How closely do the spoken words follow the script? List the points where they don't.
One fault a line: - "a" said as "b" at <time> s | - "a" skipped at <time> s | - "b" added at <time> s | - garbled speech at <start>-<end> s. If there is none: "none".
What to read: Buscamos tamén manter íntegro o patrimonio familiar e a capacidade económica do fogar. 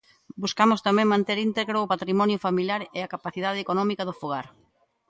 none